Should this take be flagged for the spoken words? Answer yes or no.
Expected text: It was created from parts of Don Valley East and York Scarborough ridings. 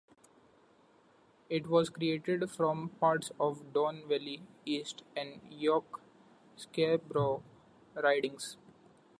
no